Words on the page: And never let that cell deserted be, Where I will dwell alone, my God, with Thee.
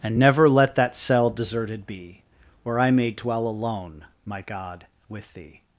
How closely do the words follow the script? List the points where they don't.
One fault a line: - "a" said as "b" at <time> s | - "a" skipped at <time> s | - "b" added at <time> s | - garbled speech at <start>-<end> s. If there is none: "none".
- "will" said as "may" at 2.9 s